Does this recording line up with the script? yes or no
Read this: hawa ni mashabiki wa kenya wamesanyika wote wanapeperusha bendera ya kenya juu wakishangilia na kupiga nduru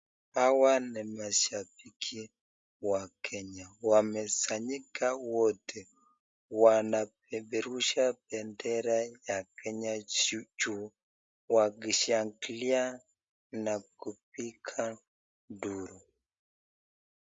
yes